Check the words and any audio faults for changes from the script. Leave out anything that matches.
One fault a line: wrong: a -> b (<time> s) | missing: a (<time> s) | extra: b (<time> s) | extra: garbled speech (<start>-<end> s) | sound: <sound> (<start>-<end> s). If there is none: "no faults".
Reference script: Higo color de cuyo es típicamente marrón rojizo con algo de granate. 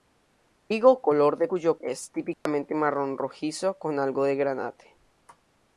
sound: dropout (2.3-2.5 s)